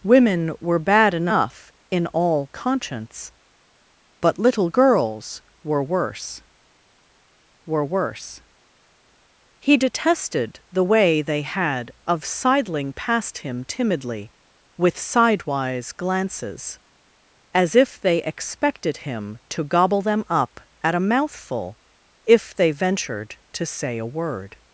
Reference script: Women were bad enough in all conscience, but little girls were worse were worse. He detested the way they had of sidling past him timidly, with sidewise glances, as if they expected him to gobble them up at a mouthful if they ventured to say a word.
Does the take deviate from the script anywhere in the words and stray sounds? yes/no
no